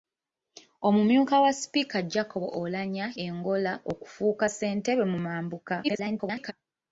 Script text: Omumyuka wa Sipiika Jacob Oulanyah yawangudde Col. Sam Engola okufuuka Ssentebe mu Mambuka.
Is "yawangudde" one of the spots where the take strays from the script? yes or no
yes